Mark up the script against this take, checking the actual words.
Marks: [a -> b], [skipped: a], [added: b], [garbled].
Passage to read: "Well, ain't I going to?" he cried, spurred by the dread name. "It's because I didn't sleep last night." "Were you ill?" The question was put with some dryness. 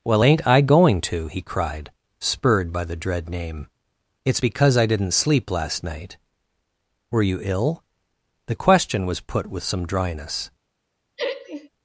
"Well, ain't I going to?" he cried, spurred by the dread name. "It's because I didn't sleep last night." "Were you ill?" The question was put with some dryness.